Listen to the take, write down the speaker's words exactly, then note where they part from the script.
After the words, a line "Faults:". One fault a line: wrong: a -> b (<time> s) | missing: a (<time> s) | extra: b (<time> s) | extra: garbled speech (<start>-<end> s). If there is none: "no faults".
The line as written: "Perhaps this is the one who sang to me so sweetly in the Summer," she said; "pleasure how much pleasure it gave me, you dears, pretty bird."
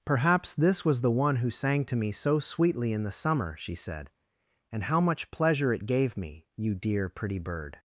"Perhaps this was the one who sang to me so sweetly in the Summer," she said; "and how much pleasure it gave me, you dear, pretty bird."
Faults:
wrong: is -> was (0.8 s)
wrong: pleasure -> and (4.7 s)
wrong: dears -> dear (6.7 s)